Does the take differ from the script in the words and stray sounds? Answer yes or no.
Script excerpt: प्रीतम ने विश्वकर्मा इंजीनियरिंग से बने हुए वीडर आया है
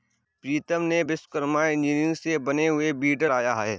no